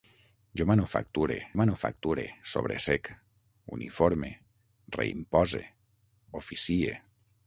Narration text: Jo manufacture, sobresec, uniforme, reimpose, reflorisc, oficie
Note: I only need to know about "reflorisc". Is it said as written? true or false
false